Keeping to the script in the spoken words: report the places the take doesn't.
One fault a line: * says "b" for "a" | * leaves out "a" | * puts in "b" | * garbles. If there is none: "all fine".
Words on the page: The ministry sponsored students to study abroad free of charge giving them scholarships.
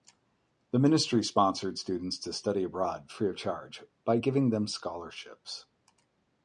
* puts in "by"